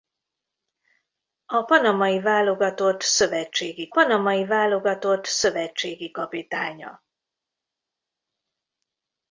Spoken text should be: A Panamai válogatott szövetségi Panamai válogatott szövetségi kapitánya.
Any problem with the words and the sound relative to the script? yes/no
no